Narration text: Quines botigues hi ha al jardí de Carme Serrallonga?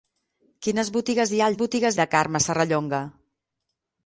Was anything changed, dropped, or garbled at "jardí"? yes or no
yes